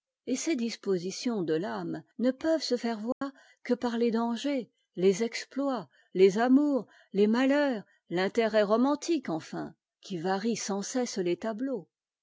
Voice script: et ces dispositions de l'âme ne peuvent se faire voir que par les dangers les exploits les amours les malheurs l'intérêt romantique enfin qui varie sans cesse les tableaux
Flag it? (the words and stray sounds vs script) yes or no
yes